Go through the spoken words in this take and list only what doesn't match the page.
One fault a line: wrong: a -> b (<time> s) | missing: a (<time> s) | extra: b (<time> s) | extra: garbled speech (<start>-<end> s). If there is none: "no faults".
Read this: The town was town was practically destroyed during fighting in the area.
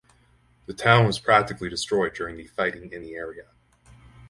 missing: town was (1.2 s)
extra: the (2.4 s)